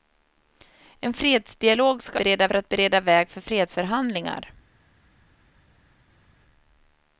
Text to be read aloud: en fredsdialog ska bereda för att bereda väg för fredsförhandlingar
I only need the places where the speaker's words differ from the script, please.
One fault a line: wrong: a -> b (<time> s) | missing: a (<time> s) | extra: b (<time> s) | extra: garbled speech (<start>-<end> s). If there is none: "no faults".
no faults